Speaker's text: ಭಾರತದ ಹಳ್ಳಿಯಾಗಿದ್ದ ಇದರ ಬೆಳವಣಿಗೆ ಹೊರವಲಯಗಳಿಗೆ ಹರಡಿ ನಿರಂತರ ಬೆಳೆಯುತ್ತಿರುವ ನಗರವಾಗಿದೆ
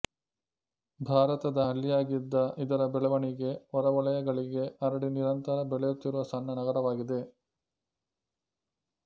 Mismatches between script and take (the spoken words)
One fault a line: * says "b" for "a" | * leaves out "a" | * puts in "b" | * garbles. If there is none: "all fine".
* puts in "ಸಣ್ಣ"